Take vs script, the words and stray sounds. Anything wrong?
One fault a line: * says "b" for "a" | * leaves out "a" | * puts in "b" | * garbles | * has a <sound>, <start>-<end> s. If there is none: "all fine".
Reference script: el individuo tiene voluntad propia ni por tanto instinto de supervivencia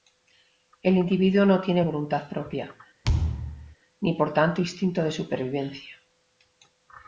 * puts in "no"
* has a thud, 3.0-3.8 s